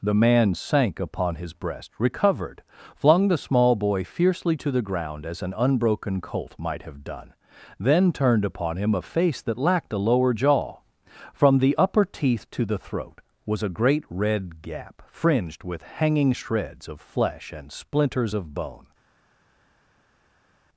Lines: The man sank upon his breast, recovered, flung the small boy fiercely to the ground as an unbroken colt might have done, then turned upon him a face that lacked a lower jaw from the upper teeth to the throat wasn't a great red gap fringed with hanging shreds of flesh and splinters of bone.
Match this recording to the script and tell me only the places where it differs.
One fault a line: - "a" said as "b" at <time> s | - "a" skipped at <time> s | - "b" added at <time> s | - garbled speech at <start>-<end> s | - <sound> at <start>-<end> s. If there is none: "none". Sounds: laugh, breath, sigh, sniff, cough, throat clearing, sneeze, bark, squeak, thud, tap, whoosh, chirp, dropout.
- "wasn't" said as "was" at 13.4 s